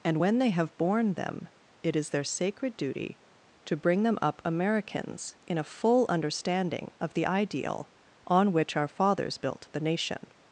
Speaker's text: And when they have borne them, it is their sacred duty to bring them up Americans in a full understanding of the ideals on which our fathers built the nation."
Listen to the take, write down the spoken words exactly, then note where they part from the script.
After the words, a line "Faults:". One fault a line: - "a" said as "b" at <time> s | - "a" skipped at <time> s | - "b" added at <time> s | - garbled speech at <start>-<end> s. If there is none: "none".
And when they have borne them, it is their sacred duty to bring them up Americans in a full understanding of the ideal on which our fathers built the nation."
Faults:
- "ideals" said as "ideal" at 7.3 s